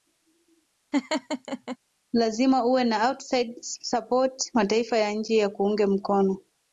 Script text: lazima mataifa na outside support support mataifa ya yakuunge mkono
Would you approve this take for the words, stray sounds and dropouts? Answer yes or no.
no